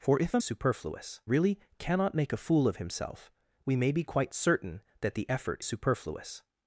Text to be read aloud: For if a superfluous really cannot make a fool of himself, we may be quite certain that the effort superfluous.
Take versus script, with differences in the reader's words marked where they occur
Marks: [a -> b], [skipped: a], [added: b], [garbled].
For if a superfluous really cannot make a fool of himself, we may be quite certain that the effort superfluous.